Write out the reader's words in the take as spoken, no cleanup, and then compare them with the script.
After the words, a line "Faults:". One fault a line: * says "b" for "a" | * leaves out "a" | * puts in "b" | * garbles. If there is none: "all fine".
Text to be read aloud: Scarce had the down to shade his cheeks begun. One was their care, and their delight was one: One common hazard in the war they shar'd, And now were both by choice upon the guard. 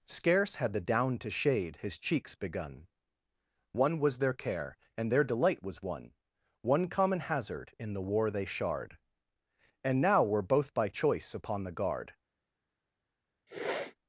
Scarce had the down to shade his cheeks begun. One was their care, and their delight was one: One common hazard in the war they shar'd, And now were both by choice upon the guard.
Faults:
all fine